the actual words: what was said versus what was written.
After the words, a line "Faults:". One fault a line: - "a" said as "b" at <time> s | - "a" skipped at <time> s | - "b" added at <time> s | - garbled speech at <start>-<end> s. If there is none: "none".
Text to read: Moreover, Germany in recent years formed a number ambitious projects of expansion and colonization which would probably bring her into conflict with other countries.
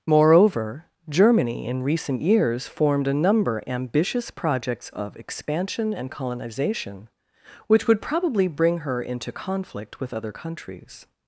Moreover, Germany in recent years formed a number ambitious projects of expansion and colonization which would probably bring her into conflict with other countries.
Faults:
none